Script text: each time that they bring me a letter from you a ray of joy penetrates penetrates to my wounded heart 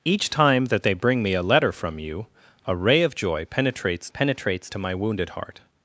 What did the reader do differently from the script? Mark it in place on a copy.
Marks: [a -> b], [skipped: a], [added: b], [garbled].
each time that they bring me a letter from you a ray of joy penetrates penetrates to my wounded heart